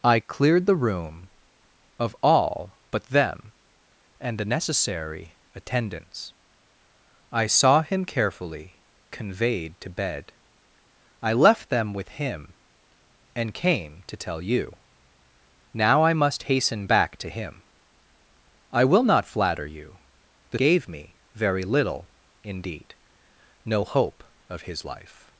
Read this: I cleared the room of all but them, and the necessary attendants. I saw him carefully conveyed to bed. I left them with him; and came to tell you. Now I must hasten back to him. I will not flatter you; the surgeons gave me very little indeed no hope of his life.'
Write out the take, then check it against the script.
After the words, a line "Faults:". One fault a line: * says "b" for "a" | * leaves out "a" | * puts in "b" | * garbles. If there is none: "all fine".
I cleared the room of all but them, and the necessary attendants. I saw him carefully conveyed to bed. I left them with him; and came to tell you. Now I must hasten back to him. I will not flatter you; the gave me very little indeed no hope of his life.'
Faults:
* leaves out "surgeons"